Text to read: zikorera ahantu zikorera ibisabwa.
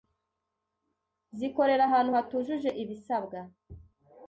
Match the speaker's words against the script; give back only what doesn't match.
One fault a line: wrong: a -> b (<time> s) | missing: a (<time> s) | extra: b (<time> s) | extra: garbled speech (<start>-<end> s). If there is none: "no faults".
wrong: zikorera -> hatujuje (2.2 s)